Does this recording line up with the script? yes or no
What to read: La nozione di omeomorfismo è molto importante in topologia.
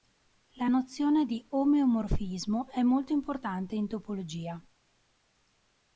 yes